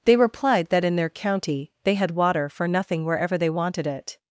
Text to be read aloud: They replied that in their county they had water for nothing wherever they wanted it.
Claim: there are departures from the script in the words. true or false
false